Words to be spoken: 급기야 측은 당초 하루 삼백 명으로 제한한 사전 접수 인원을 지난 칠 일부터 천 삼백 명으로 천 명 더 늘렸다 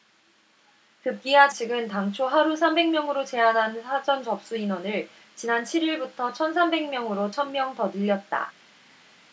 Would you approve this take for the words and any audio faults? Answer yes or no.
yes